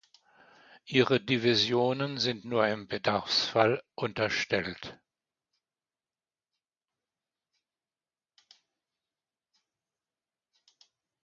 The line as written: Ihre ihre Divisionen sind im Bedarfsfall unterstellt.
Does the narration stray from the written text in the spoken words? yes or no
yes